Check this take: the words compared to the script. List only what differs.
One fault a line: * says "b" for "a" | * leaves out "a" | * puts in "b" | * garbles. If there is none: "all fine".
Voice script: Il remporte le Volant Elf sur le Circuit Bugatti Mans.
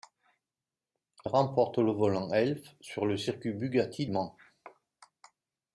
all fine